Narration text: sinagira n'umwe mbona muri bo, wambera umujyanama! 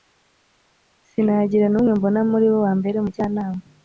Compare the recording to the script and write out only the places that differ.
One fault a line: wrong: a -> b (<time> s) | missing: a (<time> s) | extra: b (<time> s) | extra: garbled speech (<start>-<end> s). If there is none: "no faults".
no faults